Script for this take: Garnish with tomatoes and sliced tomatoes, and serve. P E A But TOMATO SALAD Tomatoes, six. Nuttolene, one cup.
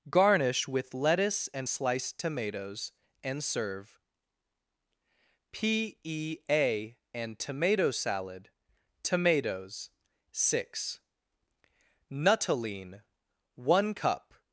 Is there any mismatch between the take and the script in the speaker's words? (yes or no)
yes